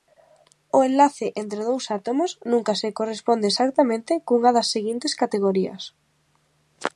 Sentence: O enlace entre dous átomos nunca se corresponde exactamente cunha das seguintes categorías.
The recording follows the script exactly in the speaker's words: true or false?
true